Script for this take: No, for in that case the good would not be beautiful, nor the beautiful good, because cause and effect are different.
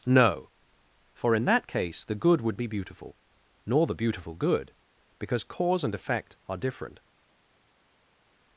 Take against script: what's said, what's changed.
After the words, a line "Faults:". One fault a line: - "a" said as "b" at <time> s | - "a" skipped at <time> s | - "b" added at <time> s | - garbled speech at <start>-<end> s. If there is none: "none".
No, for in that case the good would be beautiful, nor the beautiful good, because cause and effect are different.
Faults:
- "not" skipped at 2.6 s